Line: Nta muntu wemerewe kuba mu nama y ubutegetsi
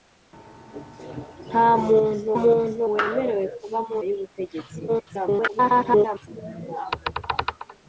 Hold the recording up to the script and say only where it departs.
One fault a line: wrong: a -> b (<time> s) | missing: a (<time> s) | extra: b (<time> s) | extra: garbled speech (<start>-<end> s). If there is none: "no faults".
extra: muntu (2.4 s)
missing: nama (4.0 s)
extra: garbled speech (4.9-6.3 s)